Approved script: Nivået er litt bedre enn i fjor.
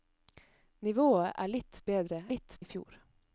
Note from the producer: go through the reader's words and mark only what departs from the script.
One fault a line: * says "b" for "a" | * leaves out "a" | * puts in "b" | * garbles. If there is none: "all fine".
* says "litt" for "enn"